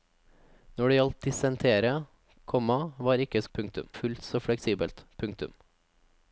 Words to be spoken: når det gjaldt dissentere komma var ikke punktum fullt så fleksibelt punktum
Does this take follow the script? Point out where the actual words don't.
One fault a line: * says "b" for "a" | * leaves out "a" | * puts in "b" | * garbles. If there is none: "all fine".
all fine